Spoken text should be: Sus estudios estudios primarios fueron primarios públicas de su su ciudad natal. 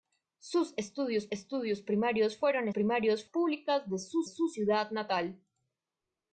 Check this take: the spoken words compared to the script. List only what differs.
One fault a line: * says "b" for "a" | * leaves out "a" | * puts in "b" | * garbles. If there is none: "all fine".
all fine